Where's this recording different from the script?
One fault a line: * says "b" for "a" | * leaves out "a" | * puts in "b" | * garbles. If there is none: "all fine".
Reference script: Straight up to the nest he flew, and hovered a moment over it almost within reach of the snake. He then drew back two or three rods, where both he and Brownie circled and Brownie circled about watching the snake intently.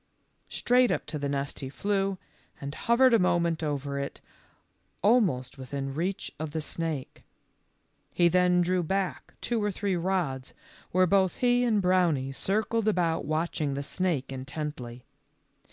* leaves out "and Brownie circled"